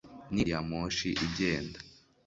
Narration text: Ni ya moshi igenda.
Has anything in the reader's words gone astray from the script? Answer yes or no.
no